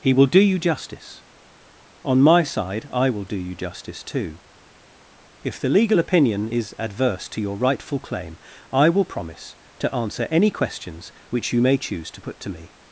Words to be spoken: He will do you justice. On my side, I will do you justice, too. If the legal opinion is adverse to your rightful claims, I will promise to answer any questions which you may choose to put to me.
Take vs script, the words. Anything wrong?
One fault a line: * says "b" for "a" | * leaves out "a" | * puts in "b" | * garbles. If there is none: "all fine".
* says "claim" for "claims"